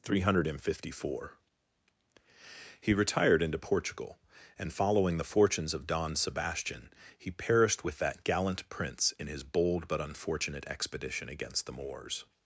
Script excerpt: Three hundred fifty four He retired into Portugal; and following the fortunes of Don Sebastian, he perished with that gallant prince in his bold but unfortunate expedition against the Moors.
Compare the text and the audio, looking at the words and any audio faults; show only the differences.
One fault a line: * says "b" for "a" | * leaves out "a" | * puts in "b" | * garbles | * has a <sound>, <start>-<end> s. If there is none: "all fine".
all fine